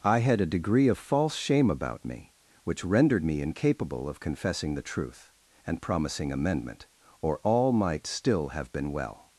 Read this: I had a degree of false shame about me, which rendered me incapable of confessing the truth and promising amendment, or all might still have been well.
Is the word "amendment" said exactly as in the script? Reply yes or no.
yes